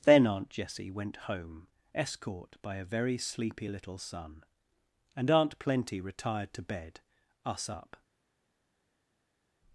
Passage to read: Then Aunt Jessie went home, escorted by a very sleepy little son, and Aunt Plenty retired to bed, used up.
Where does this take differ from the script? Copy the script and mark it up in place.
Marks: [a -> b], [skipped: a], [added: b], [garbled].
Then Aunt Jessie went home, [escorted -> escort] by a very sleepy little son, and Aunt Plenty retired to bed, [used -> us] up.